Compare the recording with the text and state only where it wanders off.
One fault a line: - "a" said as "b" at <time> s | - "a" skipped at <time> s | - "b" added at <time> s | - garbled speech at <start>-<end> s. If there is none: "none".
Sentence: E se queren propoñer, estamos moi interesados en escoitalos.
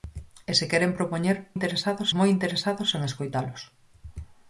- "estamos" said as "interesados" at 1.6 s